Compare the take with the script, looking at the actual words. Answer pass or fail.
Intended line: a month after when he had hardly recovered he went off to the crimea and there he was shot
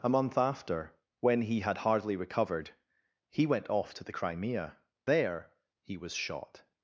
fail